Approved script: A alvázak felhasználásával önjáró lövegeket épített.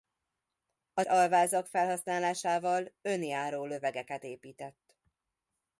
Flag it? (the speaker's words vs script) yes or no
no